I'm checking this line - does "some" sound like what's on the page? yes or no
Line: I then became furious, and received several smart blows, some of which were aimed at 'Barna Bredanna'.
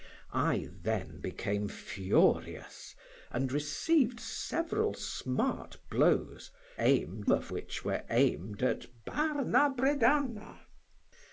no